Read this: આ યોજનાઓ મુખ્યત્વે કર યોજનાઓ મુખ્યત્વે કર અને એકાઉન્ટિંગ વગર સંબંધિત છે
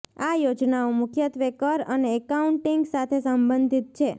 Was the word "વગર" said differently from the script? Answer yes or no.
yes